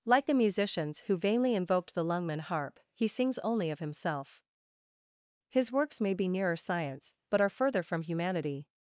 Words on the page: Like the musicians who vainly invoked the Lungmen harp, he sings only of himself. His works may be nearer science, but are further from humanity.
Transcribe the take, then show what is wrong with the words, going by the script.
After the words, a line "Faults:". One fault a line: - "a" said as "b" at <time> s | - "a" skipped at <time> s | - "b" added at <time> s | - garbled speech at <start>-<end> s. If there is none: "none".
Like the musicians who vainly invoked the Lungmen harp, he sings only of himself. His works may be nearer science, but are further from humanity.
Faults:
none